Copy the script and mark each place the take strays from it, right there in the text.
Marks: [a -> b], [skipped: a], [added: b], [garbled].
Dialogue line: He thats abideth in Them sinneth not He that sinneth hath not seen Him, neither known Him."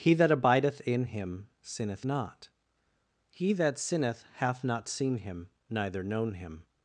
He [thats -> that] abideth in [Them -> Him] sinneth not He that sinneth hath not seen Him, neither known Him."